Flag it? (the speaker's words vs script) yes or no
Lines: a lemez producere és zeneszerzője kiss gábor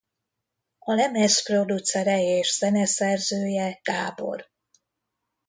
yes